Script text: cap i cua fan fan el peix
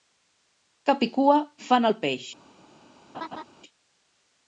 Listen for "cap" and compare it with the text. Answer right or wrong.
right